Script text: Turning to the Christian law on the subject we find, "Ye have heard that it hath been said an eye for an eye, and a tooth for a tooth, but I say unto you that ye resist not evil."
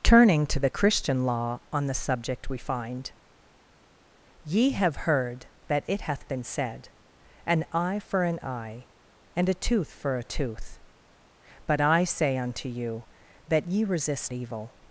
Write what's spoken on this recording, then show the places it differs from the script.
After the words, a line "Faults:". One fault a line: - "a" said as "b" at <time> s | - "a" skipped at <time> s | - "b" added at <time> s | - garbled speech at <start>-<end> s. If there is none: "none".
Turning to the Christian law on the subject we find, "Ye have heard that it hath been said an eye for an eye, and a tooth for a tooth, but I say unto you that ye resist evil."
Faults:
- "not" skipped at 14.3 s